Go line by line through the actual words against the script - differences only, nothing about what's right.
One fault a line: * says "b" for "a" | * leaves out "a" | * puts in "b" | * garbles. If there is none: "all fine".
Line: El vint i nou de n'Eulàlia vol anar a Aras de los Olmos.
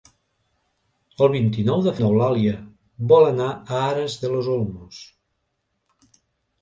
all fine